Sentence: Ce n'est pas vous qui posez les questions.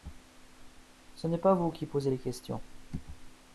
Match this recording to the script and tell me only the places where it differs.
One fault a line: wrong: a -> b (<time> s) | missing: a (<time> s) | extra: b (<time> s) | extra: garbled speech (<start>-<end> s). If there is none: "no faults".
no faults